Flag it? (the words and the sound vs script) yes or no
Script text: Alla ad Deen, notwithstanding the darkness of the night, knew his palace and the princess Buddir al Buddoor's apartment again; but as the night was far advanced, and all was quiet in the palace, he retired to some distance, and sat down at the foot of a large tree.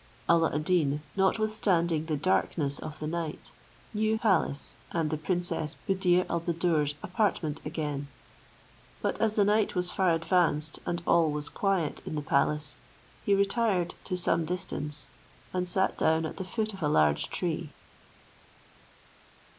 yes